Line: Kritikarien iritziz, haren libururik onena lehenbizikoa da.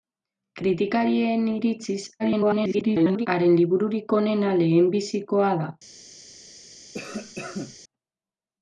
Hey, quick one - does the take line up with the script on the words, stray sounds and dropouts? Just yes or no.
no